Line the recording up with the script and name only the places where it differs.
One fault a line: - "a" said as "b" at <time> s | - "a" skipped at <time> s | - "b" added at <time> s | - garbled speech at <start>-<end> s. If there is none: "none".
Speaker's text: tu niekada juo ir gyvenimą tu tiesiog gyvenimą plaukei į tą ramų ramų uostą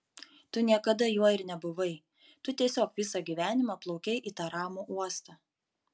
- "gyvenimą" said as "nebuvai" at 1.5 s
- "visą" added at 3.0 s
- "ramų" skipped at 4.9 s